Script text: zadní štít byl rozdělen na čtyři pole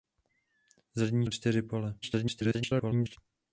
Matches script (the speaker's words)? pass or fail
fail